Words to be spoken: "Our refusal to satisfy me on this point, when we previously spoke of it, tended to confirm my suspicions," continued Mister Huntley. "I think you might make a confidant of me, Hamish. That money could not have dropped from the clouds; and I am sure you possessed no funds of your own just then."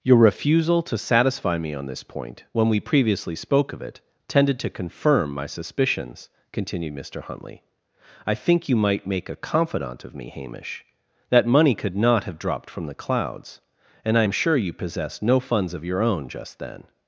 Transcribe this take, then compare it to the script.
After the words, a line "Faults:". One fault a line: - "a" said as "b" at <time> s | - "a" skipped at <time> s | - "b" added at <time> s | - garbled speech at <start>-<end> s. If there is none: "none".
"Your refusal to satisfy me on this point, when we previously spoke of it, tended to confirm my suspicions," continued Mister Huntley. "I think you might make a confidant of me, Hamish. That money could not have dropped from the clouds; and I am sure you possessed no funds of your own just then."
Faults:
- "Our" said as "Your" at 0.0 s